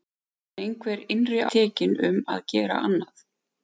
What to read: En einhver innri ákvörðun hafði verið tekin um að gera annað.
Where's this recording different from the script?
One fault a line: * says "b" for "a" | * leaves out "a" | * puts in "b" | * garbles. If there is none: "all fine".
* leaves out "ákvörðun hafði verið"